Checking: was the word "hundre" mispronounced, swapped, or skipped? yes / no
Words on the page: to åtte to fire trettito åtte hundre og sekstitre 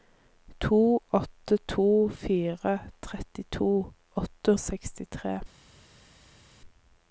yes